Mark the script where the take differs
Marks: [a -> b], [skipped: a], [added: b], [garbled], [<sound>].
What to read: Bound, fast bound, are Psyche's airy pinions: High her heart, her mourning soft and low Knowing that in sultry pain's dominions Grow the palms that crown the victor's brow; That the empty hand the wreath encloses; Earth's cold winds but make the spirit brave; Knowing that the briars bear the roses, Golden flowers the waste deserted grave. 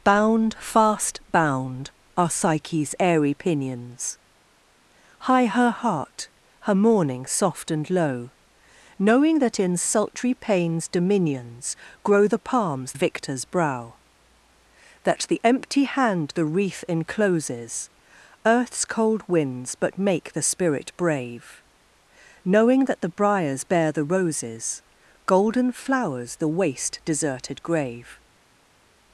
Bound, fast bound, are Psyche's airy pinions: High her heart, her mourning soft and low Knowing that in sultry pain's dominions Grow the palms [skipped: that crown the] victor's brow; That the empty hand the wreath encloses; Earth's cold winds but make the spirit brave; Knowing that the briars bear the roses, Golden flowers the waste deserted grave.